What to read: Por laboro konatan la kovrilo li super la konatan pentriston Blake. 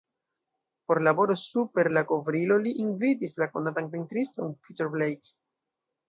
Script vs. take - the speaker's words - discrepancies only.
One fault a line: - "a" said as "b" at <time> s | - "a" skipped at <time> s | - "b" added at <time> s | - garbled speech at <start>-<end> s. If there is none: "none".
- "konatan" said as "super" at 1.4 s
- "super" said as "invitis" at 2.8 s
- "Peter" added at 4.7 s